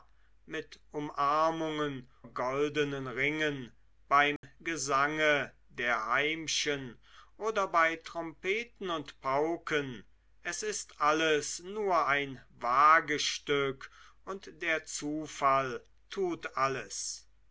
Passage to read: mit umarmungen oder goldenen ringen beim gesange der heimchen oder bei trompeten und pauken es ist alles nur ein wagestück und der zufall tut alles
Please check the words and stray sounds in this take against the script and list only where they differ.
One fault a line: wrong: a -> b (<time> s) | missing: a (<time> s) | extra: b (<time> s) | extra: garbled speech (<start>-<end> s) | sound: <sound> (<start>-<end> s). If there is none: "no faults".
missing: oder (2.1 s)
sound: dropout (4.4-4.4 s)